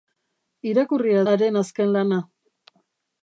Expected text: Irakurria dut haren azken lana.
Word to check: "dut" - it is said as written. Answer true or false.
false